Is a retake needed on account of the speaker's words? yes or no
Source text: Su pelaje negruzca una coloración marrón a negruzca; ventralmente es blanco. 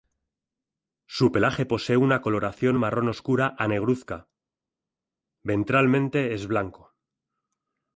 yes